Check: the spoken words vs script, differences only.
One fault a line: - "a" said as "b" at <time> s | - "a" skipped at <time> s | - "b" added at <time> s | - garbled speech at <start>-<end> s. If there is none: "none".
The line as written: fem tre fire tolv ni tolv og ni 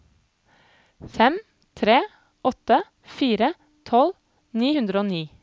- "åtte" added at 2.4 s
- "tolv" said as "hundre" at 4.8 s